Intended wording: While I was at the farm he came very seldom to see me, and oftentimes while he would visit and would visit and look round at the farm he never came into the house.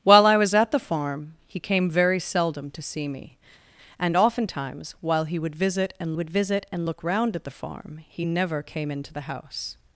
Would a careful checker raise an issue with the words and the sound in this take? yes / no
no